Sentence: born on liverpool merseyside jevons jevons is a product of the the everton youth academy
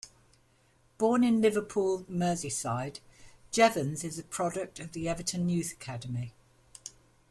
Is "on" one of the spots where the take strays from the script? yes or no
yes